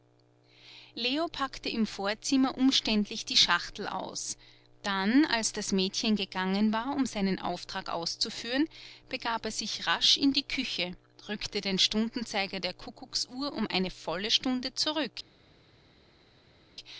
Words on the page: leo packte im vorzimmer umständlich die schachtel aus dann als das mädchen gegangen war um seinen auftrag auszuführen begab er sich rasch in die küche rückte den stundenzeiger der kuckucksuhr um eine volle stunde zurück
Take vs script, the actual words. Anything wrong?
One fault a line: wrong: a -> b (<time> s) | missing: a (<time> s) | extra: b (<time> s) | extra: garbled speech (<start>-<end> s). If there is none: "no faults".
no faults